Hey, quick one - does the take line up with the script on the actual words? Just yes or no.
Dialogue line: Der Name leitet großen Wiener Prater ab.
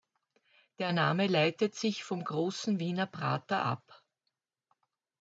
no